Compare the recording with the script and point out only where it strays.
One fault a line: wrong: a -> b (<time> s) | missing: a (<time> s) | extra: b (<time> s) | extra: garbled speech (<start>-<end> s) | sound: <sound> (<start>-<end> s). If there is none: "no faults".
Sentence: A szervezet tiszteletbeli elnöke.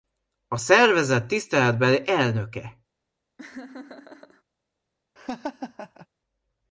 sound: laugh (3.4-4.4 s)
sound: laugh (5.2-6.1 s)